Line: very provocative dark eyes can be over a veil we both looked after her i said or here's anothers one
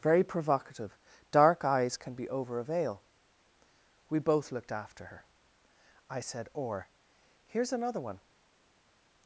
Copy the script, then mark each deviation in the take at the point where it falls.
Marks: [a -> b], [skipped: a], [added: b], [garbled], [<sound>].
very provocative dark eyes can be over a veil we both looked after her i said or here's [anothers -> another] one